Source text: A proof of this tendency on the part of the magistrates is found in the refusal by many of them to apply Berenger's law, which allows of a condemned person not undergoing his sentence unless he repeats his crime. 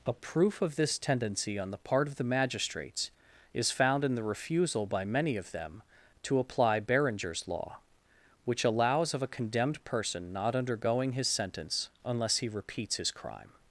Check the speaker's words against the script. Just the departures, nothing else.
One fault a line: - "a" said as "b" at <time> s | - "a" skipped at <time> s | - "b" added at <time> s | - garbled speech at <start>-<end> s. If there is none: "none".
none